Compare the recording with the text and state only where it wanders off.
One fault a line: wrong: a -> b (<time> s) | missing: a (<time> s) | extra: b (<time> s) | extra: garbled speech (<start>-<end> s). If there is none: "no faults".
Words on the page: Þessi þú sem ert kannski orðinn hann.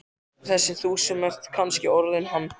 no faults